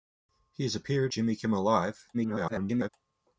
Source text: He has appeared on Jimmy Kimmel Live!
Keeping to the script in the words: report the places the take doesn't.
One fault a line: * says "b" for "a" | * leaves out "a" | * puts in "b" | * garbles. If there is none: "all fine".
* leaves out "on"
* garbles